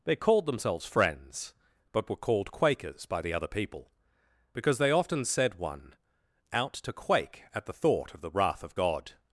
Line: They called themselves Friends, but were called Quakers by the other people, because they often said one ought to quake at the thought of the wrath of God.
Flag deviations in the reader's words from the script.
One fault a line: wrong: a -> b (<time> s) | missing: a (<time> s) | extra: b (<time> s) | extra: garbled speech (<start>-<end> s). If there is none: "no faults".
wrong: ought -> out (6.5 s)